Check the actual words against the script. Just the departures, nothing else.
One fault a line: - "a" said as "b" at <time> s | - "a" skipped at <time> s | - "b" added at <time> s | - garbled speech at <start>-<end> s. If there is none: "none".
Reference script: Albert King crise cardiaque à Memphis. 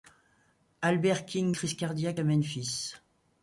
none